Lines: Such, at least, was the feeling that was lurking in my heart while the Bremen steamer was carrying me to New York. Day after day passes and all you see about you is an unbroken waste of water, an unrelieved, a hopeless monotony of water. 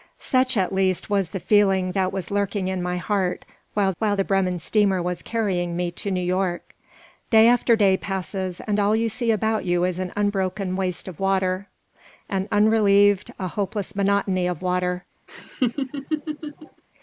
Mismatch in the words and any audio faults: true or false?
true